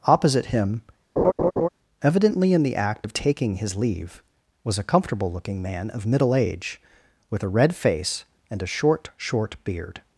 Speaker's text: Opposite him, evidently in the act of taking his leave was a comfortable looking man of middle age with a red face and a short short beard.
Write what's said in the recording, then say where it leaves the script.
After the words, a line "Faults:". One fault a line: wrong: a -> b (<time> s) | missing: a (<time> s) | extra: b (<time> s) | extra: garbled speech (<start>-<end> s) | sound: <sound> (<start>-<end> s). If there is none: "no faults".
Opposite him, evidently in the act of taking his leave was a comfortable looking man of middle age with a red face and a short short beard.
Faults:
sound: laugh (1.2-1.7 s)